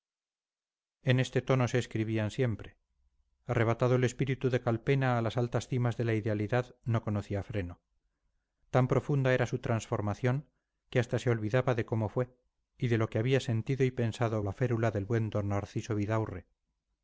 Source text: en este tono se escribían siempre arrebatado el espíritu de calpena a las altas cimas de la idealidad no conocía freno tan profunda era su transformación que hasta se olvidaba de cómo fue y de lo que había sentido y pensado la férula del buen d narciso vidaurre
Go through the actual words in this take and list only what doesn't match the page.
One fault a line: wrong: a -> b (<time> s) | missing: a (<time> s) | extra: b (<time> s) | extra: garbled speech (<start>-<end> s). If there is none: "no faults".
no faults